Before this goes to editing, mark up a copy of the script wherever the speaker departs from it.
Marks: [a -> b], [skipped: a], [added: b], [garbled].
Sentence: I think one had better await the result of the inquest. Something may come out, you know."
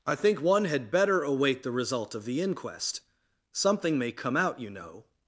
I think one had better await the result of the inquest. Something may come out, you know."